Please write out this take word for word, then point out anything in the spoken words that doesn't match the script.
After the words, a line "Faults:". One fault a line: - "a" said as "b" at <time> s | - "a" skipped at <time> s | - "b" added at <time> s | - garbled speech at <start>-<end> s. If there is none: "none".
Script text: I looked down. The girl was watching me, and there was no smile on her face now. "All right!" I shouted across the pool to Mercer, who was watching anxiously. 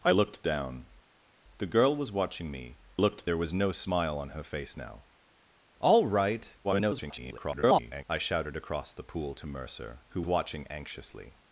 I looked down. The girl was watching me, looked there was no smile on her face now. "All right!" [garbled] I shouted across the pool to Mercer, who watching anxiously.
Faults:
- "and" said as "looked" at 3.0 s
- garbled speech at 6.6-8.0 s
- "was" skipped at 10.2 s